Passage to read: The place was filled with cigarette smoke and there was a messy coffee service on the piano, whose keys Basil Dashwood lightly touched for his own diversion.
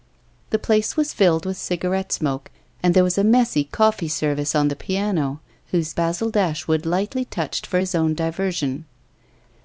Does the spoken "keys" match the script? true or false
false